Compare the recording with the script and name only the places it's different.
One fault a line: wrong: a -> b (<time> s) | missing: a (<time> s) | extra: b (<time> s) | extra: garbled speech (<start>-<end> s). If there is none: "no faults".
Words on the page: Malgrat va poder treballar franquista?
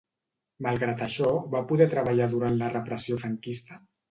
extra: això (1.1 s)
extra: durant la repressió (2.4 s)